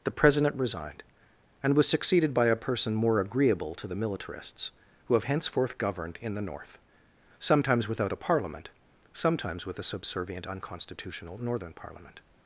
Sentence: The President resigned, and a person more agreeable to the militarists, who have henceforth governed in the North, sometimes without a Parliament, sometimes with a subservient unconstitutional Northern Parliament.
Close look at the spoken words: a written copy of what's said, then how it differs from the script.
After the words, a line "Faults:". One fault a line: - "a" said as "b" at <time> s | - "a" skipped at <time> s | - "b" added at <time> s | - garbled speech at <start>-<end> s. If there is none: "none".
The President resigned, and was succeeded by a person more agreeable to the militarists, who have henceforth governed in the North, sometimes without a Parliament, sometimes with a subservient unconstitutional Northern Parliament.
Faults:
- "was succeeded by" added at 1.8 s